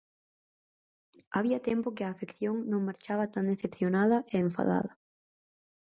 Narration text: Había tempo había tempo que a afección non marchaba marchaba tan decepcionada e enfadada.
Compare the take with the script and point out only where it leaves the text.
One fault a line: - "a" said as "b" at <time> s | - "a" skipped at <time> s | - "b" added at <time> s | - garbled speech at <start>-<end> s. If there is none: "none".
- "había tempo" skipped at 1.9 s
- "marchaba" skipped at 3.2 s